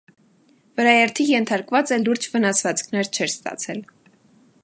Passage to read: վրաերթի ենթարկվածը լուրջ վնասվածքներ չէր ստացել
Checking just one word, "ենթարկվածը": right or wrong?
right